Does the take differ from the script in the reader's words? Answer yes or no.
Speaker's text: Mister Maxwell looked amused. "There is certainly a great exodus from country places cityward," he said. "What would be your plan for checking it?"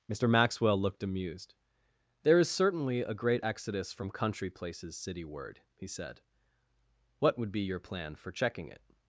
no